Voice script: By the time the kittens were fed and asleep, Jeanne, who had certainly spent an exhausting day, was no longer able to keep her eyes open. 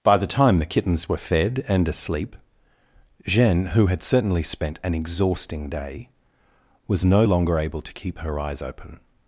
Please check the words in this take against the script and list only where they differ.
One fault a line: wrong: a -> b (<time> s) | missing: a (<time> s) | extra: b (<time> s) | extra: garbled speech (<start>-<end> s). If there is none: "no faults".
no faults